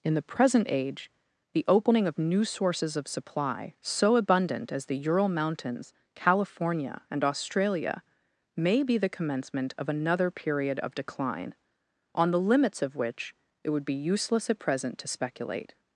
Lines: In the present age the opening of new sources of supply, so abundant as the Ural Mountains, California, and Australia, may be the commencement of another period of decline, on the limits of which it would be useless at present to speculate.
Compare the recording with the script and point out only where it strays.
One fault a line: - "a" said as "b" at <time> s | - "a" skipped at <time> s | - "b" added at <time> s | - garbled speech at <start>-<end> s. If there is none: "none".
none